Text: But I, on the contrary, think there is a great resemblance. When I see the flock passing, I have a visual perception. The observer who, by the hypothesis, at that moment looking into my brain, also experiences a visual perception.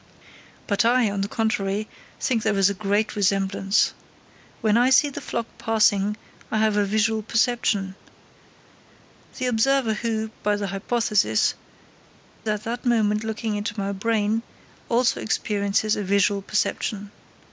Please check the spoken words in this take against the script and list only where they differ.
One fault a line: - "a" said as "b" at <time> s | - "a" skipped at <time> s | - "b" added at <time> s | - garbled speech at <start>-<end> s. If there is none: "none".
none